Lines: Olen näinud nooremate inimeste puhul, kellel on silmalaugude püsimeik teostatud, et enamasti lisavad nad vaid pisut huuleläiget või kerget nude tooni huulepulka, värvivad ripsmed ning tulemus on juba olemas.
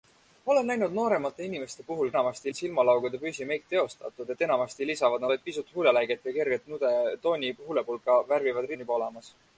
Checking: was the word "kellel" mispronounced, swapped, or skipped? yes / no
yes